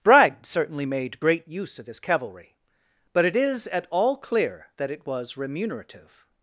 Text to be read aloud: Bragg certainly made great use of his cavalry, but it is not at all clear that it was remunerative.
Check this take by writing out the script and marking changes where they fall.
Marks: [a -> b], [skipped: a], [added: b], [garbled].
Bragg certainly made great use of his cavalry, but it is [skipped: not] at all clear that it was remunerative.